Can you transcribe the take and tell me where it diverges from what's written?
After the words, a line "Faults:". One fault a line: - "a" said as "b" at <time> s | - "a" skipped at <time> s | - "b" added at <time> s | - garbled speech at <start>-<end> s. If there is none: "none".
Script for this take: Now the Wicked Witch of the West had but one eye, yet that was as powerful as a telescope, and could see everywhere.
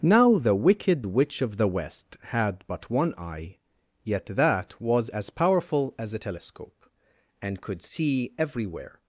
Now the Wicked Witch of the West had but one eye, yet that was as powerful as a telescope, and could see everywhere.
Faults:
none